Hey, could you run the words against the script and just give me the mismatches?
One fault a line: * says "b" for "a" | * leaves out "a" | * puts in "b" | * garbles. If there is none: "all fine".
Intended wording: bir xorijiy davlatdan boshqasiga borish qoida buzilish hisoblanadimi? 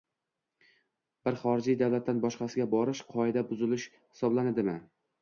all fine